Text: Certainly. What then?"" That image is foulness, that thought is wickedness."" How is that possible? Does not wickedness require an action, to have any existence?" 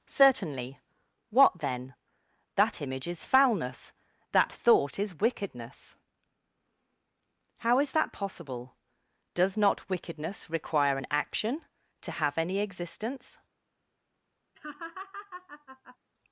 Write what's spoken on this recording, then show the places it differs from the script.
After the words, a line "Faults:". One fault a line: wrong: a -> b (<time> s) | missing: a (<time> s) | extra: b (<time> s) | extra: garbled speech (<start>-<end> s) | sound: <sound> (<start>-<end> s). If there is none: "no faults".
Certainly. What then?"" That image is foulness, that thought is wickedness."" How is that possible? Does not wickedness require an action, to have any existence?"
Faults:
sound: laugh (14.5-16.0 s)